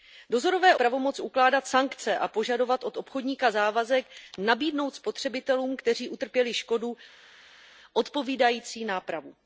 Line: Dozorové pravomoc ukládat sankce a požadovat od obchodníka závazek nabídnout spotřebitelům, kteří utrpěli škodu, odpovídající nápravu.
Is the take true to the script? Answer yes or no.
yes